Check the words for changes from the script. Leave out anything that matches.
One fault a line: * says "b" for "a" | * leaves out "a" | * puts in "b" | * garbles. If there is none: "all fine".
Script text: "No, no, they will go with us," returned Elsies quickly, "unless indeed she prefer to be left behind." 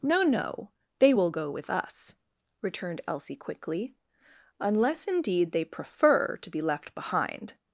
* says "Elsie" for "Elsies"
* says "they" for "she"